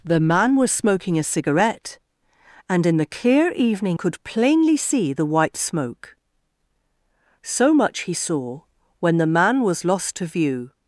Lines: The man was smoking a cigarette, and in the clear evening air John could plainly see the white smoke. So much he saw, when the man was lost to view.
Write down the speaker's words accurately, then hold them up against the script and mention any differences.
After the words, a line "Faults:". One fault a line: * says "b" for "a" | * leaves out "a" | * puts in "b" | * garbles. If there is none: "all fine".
The man was smoking a cigarette, and in the clear evening could plainly see the white smoke. So much he saw, when the man was lost to view.
Faults:
* leaves out "air John"